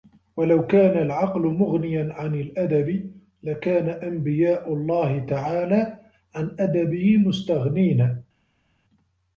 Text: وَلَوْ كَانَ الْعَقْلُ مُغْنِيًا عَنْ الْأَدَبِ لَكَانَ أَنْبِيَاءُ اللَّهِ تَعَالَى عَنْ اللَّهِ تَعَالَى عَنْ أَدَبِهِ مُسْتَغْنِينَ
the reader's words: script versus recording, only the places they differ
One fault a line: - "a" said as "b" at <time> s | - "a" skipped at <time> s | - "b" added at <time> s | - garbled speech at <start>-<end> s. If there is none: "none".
- "اللَّهِ تَعَالَى عَنْ" skipped at 6.5 s